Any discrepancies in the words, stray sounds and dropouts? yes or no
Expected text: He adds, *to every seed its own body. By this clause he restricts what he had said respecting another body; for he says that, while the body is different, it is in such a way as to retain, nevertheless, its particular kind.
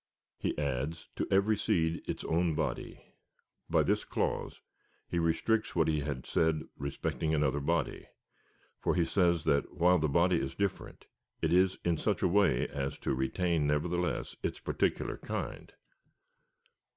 no